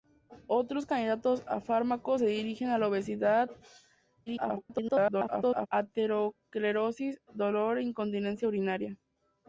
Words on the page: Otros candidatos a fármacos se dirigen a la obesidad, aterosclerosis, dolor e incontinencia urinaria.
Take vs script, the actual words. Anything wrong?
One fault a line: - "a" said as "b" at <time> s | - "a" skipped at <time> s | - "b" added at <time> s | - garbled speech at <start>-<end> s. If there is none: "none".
- garbled speech at 4.3-5.7 s